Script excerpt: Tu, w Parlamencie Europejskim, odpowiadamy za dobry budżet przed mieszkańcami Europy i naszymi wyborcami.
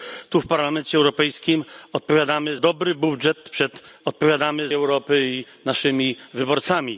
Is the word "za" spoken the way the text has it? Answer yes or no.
no